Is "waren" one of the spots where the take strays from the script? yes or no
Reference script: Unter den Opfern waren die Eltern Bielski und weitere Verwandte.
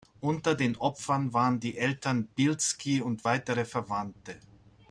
no